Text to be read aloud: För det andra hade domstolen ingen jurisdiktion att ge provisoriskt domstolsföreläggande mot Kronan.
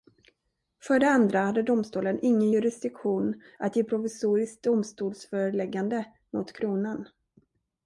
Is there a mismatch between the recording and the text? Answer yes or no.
no